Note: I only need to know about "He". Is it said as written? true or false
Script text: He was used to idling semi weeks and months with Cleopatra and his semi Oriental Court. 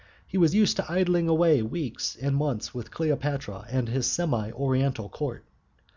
true